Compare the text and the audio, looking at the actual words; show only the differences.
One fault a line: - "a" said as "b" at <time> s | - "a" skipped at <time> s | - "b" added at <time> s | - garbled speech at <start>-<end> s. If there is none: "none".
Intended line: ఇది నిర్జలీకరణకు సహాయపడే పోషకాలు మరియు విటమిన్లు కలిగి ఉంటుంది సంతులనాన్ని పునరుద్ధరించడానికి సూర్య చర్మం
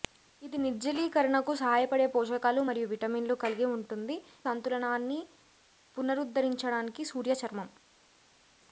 none